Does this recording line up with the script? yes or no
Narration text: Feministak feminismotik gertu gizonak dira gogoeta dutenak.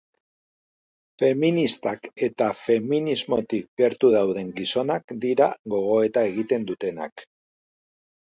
no